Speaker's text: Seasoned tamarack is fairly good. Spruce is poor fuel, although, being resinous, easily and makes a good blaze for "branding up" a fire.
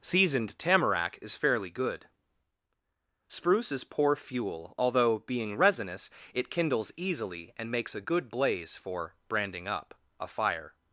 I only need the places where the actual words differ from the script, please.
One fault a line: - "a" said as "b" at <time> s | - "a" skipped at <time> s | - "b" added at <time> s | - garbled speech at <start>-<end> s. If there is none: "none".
- "it kindles" added at 6.3 s